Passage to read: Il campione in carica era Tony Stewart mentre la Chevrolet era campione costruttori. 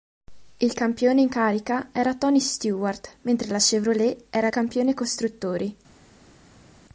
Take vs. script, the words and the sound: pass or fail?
pass